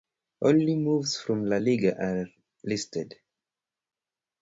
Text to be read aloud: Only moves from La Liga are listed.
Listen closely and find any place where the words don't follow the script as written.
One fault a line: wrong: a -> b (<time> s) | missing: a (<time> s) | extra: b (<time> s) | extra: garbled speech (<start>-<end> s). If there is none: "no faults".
no faults